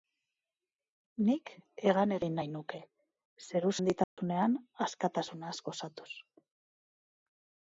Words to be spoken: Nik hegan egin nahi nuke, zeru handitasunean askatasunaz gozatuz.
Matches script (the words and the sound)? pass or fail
fail